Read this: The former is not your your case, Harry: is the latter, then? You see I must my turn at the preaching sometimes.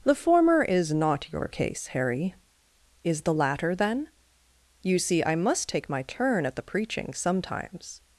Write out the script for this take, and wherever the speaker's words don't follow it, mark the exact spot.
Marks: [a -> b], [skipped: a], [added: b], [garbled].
The former is not your [skipped: your] case, Harry: is the latter, then? You see I must [added: take] my turn at the preaching sometimes.